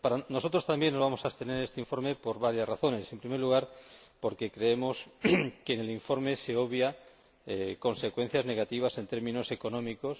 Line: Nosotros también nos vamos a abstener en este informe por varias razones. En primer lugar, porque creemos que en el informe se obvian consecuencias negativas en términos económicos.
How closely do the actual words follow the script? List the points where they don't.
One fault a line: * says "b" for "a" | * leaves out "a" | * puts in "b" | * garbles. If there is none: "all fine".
all fine